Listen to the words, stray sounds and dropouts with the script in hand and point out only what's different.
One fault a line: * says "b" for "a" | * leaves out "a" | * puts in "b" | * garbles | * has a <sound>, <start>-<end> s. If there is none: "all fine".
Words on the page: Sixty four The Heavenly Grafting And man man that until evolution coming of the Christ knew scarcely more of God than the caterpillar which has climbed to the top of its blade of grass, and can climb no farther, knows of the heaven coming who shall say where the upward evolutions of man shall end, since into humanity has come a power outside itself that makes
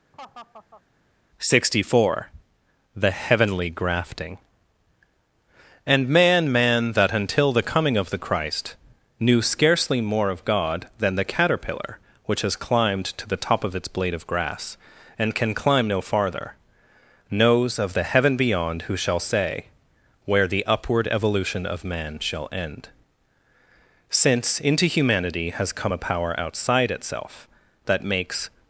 * has a laugh, 0.1-0.8 s
* says "the" for "evolution"
* says "beyond" for "coming"
* says "evolution" for "evolutions"